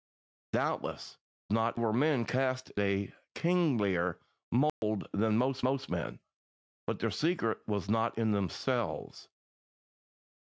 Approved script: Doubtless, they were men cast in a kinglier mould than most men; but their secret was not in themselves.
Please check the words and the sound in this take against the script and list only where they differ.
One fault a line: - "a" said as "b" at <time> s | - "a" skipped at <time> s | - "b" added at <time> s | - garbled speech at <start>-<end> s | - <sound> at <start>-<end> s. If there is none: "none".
- "they" said as "not" at 1.5 s
- "in" skipped at 2.7 s
- dropout at 4.7-4.8 s
- "most" added at 5.6 s